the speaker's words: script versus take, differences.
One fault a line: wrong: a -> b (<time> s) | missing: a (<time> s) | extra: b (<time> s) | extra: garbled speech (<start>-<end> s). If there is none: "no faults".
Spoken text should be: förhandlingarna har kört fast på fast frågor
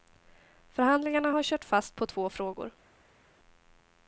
wrong: fast -> två (2.1 s)